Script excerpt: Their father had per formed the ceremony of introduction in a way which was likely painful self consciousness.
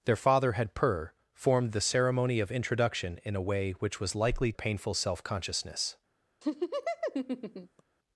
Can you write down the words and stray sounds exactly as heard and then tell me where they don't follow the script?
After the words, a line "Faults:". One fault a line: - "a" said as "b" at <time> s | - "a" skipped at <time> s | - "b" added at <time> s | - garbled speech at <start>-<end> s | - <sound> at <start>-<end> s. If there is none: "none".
Their father had per formed the ceremony of introduction in a way which was likely painful self consciousness.
Faults:
- laugh at 6.4-7.8 s